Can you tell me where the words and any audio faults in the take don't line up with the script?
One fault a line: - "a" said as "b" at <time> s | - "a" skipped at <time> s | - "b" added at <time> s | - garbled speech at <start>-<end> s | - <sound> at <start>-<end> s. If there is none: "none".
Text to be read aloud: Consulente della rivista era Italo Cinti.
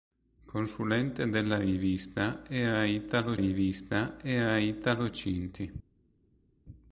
- "rivista era Italo" added at 3.3 s